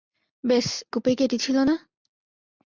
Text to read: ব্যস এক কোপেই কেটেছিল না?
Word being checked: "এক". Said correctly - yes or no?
no